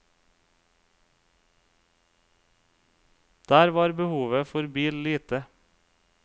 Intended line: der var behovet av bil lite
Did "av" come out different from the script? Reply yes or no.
yes